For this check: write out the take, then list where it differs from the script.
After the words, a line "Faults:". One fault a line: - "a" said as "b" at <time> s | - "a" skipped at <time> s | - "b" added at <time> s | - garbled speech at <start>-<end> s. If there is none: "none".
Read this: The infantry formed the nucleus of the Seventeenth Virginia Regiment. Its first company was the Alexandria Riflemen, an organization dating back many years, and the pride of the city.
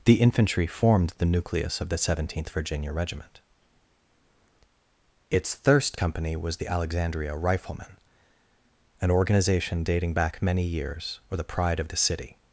The infantry formed the nucleus of the Seventeenth Virginia Regiment. Its thirst company was the Alexandria Riflemen, an organization dating back many years, or the pride of the city.
Faults:
- "first" said as "thirst" at 5.5 s
- "and" said as "or" at 11.3 s